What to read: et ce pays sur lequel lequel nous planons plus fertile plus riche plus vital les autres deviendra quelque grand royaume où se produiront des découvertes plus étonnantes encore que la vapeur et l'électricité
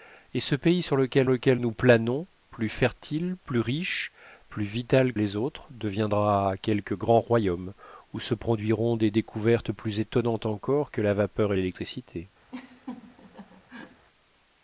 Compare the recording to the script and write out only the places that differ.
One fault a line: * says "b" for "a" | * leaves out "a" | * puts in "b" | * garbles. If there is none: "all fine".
all fine